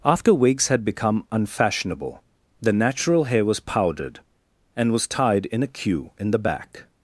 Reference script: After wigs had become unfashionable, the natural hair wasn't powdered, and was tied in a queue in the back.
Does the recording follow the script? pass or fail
fail